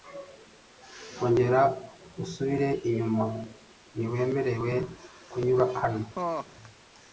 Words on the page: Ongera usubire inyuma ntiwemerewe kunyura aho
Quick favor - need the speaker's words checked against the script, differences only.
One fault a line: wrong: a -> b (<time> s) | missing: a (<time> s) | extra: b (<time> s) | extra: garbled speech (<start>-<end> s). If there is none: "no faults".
wrong: aho -> hano (5.8 s)